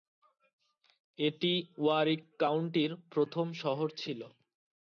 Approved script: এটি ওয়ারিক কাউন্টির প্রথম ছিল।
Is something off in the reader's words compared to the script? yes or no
yes